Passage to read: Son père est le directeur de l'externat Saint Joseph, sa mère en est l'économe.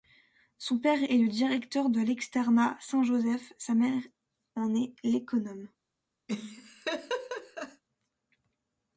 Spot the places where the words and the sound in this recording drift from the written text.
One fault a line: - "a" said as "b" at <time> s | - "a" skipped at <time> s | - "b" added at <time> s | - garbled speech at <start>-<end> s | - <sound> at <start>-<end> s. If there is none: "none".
- laugh at 6.3-7.8 s